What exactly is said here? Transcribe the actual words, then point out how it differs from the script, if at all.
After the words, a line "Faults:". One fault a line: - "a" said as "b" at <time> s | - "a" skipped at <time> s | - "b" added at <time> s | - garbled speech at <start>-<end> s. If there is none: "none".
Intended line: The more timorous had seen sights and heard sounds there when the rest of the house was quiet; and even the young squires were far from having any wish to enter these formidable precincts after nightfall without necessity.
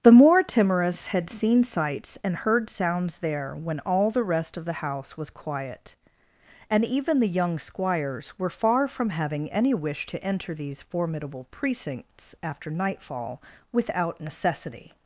The more timorous had seen sights and heard sounds there when all the rest of the house was quiet; and even the young squires were far from having any wish to enter these formidable precincts after nightfall without necessity.
Faults:
- "all" added at 3.8 s